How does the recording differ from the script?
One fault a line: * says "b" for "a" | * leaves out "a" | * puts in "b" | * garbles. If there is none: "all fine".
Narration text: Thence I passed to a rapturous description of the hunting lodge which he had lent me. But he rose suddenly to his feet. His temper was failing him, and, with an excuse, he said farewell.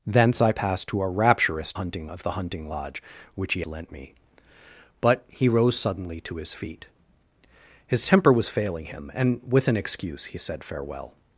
* says "hunting" for "description"
* leaves out "had"